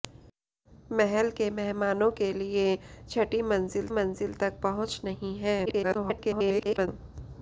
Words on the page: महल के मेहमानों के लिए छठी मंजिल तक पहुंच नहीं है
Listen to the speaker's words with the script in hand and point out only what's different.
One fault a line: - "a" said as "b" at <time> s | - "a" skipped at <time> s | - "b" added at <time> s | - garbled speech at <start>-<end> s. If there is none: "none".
- "मंजिल" added at 3.9 s
- garbled speech at 5.7-6.9 s